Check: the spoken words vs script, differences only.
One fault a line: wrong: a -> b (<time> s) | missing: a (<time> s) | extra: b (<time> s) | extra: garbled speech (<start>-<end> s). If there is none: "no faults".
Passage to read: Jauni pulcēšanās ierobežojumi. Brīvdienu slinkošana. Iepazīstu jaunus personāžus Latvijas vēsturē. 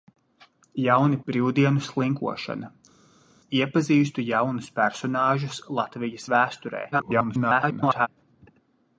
missing: pulcēšanās ierobežojumi (1.2 s)
extra: garbled speech (6.9-8.1 s)